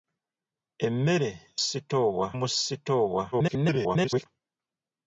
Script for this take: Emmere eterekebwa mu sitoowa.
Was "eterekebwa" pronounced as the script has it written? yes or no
no